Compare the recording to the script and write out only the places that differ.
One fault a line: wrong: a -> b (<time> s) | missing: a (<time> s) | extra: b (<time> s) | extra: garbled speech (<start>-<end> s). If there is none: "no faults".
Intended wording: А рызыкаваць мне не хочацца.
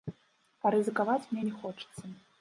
no faults